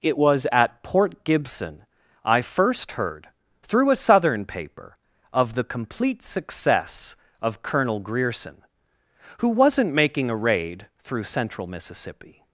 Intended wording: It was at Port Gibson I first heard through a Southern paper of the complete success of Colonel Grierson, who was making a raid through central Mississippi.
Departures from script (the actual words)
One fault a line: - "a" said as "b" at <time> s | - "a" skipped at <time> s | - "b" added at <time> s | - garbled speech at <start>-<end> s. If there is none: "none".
- "was" said as "wasn't" at 9.5 s